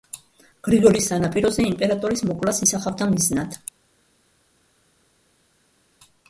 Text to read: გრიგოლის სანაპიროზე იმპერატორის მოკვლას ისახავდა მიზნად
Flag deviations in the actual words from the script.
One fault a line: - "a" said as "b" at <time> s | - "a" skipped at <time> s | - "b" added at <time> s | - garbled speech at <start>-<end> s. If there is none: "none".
none